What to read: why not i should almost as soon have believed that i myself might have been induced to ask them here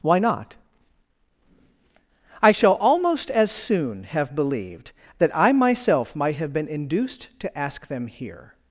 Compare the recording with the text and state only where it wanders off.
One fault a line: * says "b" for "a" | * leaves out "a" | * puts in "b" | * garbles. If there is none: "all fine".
* says "shall" for "should"